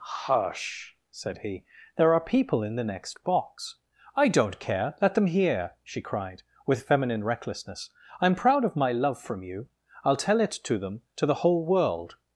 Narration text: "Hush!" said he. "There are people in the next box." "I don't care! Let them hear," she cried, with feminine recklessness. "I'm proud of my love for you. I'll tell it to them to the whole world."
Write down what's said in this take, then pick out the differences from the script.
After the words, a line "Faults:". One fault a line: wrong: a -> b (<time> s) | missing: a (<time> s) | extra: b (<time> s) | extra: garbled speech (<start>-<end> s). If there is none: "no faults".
"Hush!" said he. "There are people in the next box." "I don't care! Let them hear," she cried, with feminine recklessness. "I'm proud of my love from you. I'll tell it to them to the whole world."
Faults:
wrong: for -> from (9.2 s)